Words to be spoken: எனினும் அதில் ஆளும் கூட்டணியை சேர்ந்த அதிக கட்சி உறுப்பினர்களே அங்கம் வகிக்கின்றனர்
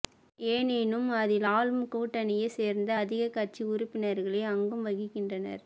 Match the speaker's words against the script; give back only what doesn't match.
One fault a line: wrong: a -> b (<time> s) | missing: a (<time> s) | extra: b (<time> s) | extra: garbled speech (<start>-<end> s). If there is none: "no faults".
no faults